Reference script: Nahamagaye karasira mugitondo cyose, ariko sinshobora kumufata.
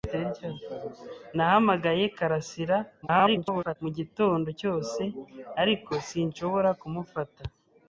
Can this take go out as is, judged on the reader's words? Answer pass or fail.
fail